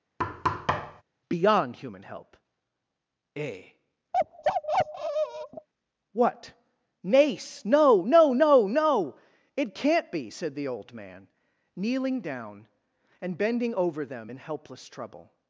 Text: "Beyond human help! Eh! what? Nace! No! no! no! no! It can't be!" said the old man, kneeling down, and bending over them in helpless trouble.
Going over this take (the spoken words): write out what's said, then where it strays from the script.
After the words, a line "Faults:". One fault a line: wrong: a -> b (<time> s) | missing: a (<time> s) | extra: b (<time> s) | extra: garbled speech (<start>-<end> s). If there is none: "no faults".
"Beyond human help! Eh! what? Nace! No! no! no! no! It can't be!" said the old man, kneeling down, and bending over them in helpless trouble.
Faults:
no faults